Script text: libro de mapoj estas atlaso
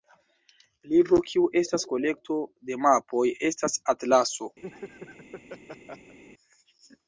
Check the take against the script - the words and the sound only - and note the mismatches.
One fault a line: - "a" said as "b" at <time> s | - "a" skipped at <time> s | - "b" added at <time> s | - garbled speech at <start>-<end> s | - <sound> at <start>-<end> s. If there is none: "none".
- "kiu estas kolekto" added at 1.3 s
- laugh at 4.6-6.2 s